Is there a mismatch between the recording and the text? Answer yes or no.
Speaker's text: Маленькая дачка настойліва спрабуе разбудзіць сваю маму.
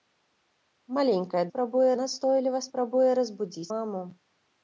yes